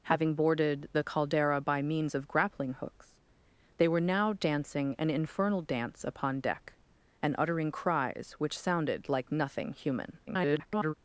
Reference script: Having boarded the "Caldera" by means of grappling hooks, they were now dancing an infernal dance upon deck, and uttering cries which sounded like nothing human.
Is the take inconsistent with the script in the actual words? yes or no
yes